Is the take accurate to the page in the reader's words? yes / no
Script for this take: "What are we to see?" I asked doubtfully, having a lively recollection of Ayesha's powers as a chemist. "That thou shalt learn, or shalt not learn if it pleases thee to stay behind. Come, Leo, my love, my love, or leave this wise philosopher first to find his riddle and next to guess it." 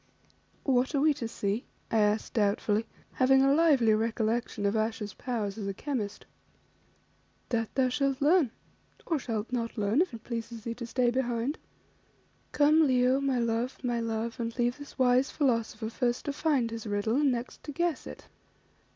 no